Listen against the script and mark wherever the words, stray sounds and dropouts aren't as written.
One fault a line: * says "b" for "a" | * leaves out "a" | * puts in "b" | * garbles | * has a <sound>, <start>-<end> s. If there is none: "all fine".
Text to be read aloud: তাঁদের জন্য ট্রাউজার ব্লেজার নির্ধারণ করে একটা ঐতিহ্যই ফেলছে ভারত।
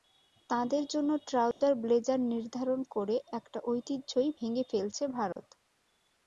* has a dropout, 1.5-1.6 s
* puts in "ভেঙে"
* has a dropout, 5.3-5.4 s